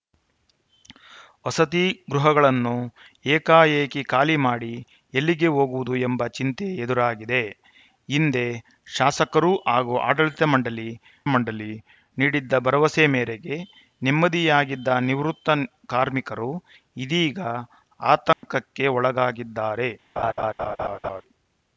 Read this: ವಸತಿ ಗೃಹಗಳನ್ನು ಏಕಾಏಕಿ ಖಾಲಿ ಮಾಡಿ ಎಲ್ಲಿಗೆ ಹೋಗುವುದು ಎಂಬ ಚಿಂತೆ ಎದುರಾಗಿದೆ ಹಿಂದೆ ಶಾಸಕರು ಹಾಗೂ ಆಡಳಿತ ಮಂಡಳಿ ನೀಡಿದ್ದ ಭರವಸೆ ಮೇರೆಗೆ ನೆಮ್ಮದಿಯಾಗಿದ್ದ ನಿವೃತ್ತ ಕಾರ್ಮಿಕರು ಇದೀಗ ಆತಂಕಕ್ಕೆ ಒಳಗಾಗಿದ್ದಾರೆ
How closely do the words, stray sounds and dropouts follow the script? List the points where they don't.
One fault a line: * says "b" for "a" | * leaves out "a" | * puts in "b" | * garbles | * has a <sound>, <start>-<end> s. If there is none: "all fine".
* puts in "ಮಂಡಳಿ"
* has a dropout, 18.3-18.4 s
* has a laugh, 20.2-21.2 s